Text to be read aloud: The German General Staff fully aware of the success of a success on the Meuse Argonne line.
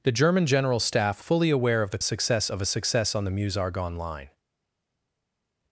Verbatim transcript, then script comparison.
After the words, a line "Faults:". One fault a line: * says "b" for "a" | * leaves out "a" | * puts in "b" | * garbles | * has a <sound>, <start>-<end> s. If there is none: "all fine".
The German General Staff fully aware of the success of a success on the Meuse Argonne line.
Faults:
all fine